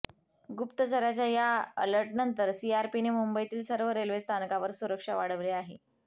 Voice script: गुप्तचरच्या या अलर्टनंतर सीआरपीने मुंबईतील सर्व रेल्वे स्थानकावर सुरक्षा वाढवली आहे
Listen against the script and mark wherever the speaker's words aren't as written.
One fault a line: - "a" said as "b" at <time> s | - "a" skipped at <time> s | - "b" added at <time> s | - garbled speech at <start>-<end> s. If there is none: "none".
none